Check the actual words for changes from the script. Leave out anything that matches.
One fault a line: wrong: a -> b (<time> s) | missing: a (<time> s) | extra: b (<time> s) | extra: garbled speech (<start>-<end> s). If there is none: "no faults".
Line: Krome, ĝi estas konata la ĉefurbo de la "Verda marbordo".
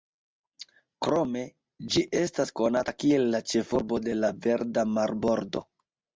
extra: kiel (3.0 s)